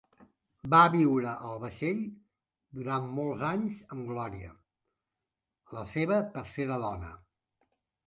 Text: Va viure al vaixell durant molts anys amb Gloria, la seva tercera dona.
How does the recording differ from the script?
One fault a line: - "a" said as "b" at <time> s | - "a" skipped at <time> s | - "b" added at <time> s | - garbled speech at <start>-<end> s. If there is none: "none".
none